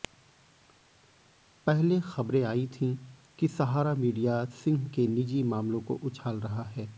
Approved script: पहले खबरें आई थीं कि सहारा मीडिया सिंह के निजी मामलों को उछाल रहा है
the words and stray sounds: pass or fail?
pass